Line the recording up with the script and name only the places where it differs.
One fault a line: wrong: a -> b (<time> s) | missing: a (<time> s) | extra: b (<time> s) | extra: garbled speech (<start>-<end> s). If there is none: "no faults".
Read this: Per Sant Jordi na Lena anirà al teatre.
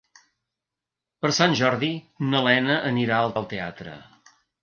extra: al (3.4 s)